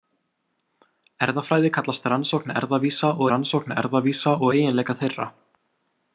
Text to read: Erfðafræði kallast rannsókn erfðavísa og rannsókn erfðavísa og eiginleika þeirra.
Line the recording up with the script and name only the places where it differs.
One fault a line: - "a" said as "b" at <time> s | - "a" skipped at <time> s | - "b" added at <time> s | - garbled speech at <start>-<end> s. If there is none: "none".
none